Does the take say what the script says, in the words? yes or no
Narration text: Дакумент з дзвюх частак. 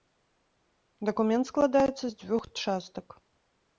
no